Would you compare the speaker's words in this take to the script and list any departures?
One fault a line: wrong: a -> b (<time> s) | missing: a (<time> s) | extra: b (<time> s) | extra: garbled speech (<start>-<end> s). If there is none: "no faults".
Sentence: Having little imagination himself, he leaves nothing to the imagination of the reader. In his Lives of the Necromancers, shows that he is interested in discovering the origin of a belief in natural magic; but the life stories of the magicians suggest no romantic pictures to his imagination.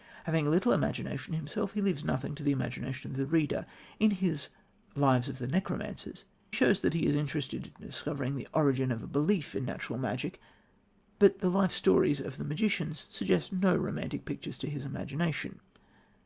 no faults